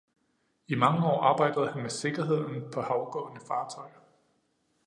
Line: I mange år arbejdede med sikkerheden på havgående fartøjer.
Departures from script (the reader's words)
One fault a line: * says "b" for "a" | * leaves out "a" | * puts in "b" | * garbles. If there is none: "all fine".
* puts in "han"